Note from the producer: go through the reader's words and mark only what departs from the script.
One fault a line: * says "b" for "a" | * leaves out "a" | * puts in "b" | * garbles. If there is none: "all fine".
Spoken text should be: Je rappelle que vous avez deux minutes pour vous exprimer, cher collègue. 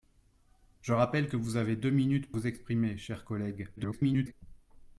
* leaves out "pour"
* garbles